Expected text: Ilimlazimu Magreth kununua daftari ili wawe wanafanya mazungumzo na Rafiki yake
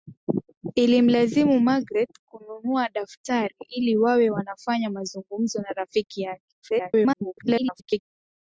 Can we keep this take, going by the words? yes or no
no